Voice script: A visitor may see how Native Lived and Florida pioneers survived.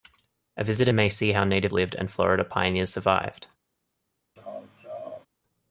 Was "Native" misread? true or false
false